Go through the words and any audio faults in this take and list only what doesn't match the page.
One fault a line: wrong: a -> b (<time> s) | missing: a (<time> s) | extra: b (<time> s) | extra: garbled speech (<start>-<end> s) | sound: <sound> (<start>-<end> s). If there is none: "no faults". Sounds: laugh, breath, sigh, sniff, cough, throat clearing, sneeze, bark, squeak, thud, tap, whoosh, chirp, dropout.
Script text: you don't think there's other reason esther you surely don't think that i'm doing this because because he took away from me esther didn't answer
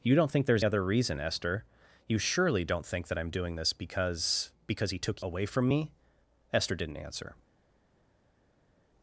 no faults